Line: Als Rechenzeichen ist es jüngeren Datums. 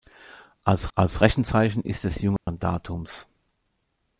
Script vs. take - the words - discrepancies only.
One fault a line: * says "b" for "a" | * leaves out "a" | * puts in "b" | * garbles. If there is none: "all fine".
* puts in "als"